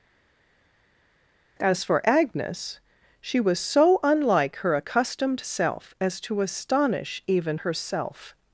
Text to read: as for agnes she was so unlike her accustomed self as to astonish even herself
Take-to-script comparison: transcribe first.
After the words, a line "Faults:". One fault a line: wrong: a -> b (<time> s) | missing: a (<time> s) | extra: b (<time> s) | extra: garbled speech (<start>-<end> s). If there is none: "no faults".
as for agnes she was so unlike her accustomed self as to astonish even herself
Faults:
no faults